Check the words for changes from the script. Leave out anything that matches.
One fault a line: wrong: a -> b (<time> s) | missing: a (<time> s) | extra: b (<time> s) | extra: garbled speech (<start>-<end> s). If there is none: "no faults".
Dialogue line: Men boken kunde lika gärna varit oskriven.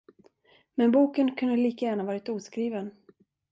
no faults